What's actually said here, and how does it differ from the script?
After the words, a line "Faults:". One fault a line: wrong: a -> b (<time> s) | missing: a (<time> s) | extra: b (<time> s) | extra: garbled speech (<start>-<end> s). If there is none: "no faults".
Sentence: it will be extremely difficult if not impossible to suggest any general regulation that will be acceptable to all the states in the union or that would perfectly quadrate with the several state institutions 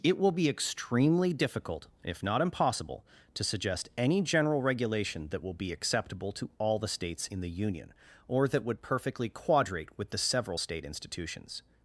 it will be extremely difficult if not impossible to suggest any general regulation that will be acceptable to all the states in the union or that would perfectly quadrate with the several state institutions
Faults:
no faults